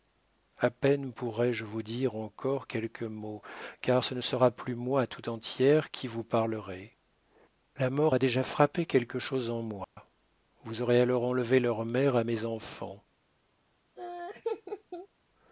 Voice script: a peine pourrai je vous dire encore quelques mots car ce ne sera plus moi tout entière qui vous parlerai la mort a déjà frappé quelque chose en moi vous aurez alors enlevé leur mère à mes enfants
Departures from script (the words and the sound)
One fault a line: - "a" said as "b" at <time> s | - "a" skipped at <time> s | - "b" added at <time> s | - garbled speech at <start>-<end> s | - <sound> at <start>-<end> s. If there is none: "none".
- dropout at 9.8-10.0 s
- laugh at 14.0-15.1 s